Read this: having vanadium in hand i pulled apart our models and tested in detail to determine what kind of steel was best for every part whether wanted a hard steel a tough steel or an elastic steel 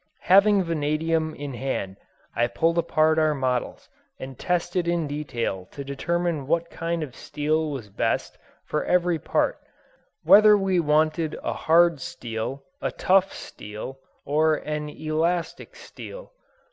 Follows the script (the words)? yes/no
no